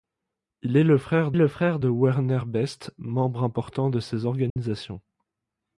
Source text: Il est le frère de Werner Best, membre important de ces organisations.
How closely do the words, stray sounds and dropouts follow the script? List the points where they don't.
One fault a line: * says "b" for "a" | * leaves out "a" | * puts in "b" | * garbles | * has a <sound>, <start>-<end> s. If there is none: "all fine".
* puts in "le frère"
* has a dropout, 4.5-4.6 s